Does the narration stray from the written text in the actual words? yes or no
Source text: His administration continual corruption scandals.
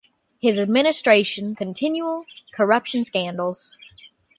no